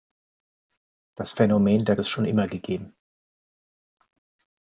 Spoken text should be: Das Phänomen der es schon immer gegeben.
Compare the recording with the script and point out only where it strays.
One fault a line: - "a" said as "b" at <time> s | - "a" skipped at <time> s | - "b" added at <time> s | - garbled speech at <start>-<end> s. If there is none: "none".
none